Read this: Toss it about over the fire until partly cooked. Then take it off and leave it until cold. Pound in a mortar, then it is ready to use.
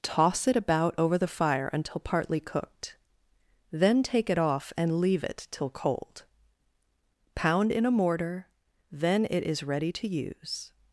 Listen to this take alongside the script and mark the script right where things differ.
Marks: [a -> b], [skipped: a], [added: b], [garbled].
Toss it about over the fire until partly cooked. Then take it off and leave it [until -> till] cold. Pound in a mortar, then it is ready to use.